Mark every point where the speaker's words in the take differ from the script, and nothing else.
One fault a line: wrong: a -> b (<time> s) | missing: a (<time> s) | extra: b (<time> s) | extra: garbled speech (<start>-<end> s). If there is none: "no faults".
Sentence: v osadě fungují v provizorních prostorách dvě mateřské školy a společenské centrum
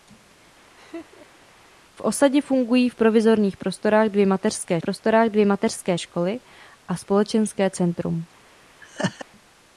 extra: prostorách dvě mateřské (4.8 s)